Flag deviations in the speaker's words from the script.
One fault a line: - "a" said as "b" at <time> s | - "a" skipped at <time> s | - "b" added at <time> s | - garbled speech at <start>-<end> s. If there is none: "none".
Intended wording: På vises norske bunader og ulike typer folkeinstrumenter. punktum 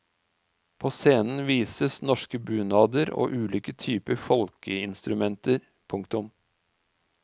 - "scenen" added at 0.9 s